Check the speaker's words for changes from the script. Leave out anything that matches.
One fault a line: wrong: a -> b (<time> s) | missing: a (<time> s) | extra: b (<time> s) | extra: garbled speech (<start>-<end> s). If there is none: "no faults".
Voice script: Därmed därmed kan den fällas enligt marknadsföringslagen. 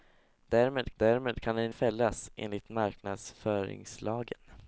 no faults